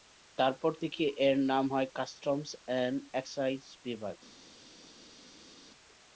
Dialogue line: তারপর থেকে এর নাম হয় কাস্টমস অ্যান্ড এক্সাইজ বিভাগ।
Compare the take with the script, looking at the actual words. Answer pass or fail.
pass